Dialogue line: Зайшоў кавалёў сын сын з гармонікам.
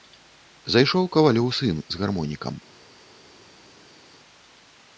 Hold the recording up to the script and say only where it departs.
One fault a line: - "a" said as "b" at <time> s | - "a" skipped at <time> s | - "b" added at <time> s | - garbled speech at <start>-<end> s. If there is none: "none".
- "сын" skipped at 1.8 s